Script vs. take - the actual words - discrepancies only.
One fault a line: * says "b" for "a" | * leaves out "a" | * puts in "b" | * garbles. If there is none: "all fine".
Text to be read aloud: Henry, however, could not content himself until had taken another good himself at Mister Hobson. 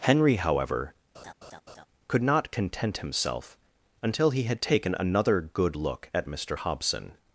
* puts in "he"
* says "look" for "himself"